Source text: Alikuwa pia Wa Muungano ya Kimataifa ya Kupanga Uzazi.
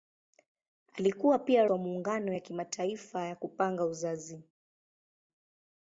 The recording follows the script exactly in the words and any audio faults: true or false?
true